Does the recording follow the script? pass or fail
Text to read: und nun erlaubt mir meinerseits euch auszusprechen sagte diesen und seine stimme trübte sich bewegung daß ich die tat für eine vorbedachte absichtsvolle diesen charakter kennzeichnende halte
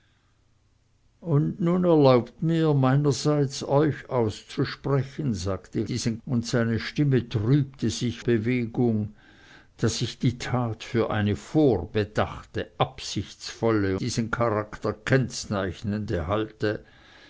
pass